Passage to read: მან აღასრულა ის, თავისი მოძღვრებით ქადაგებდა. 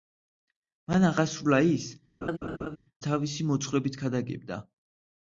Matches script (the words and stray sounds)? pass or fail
fail